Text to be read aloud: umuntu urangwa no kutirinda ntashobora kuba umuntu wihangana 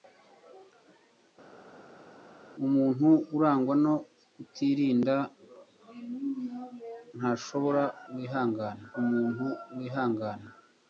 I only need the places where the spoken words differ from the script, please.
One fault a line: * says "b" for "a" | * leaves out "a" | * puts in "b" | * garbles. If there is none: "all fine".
* says "wihangana" for "kuba"